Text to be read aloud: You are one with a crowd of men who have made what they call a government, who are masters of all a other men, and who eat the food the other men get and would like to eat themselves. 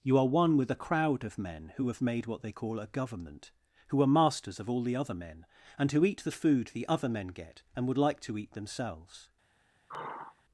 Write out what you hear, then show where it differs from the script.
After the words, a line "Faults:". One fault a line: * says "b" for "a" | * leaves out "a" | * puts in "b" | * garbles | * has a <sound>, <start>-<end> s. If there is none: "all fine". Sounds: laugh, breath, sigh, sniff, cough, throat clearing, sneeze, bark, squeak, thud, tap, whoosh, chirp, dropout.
You are one with a crowd of men who have made what they call a government, who are masters of all the other men, and who eat the food the other men get and would like to eat themselves.
Faults:
* says "the" for "a"
* has a sigh, 9.9-10.4 s